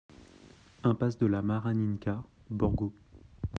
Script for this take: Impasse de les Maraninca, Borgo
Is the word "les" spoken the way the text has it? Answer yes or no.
no